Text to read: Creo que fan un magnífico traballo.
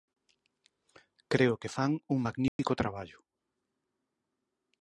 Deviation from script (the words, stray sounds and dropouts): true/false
true